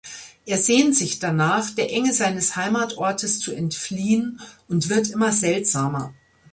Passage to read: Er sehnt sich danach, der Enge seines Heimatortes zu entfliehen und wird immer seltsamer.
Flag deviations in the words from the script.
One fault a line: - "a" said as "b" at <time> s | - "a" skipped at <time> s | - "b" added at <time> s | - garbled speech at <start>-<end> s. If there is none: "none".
none